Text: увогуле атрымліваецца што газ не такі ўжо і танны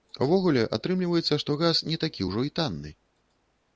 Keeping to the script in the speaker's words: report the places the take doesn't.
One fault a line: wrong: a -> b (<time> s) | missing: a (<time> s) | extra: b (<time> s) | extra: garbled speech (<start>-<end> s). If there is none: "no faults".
no faults